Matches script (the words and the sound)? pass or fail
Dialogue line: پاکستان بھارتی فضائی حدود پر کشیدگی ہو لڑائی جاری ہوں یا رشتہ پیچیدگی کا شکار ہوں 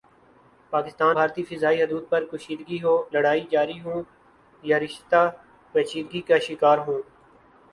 pass